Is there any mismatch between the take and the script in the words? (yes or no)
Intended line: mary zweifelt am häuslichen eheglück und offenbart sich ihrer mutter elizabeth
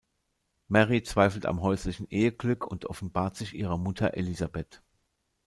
no